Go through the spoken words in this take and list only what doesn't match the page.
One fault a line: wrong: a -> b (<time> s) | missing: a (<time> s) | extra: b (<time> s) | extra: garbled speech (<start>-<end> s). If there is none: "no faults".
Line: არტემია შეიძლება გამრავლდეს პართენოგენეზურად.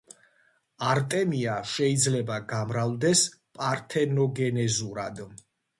no faults